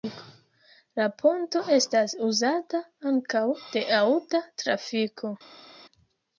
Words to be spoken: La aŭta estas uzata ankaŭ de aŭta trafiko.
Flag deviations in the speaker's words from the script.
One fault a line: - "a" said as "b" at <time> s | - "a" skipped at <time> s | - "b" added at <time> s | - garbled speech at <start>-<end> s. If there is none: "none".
- "aŭta" said as "ponto" at 1.2 s